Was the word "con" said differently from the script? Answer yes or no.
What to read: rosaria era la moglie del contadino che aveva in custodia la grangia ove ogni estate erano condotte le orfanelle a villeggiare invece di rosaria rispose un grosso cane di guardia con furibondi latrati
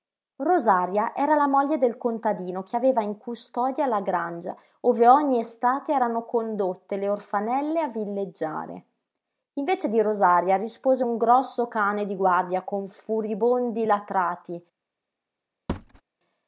no